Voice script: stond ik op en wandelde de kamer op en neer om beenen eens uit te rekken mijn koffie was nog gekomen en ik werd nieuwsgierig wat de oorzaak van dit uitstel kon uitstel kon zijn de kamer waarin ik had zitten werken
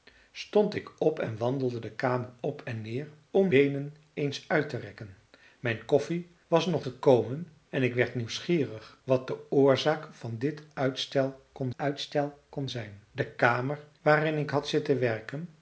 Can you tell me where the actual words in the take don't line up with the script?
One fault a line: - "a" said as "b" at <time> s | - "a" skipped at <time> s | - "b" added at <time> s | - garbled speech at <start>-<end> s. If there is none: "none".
none